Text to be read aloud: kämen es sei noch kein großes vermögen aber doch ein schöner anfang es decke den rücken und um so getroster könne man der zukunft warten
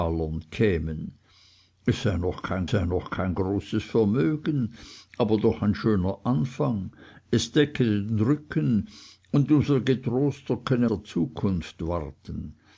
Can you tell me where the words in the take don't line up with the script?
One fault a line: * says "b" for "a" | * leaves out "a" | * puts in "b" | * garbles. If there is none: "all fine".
* puts in "sei noch kein"
* leaves out "man"